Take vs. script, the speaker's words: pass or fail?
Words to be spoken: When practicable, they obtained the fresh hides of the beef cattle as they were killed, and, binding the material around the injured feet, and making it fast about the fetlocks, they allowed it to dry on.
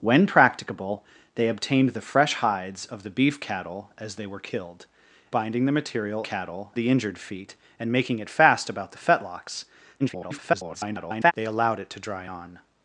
fail